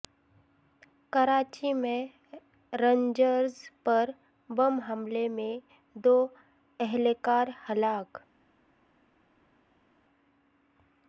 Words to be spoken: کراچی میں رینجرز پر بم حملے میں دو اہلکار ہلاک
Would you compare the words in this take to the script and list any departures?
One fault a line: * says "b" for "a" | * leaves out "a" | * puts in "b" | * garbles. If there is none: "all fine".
all fine